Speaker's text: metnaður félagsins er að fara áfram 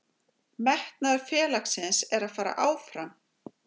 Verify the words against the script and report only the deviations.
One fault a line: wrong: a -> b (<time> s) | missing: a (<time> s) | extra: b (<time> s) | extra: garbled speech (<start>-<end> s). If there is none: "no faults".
no faults